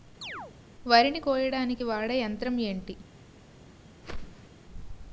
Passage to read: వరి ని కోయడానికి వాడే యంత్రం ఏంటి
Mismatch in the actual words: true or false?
false